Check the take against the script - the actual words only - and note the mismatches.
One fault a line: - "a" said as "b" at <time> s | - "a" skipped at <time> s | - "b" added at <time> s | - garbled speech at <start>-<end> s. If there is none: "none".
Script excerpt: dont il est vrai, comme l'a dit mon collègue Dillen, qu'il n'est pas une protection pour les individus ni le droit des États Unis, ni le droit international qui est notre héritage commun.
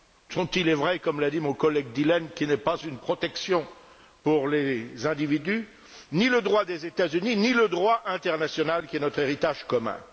none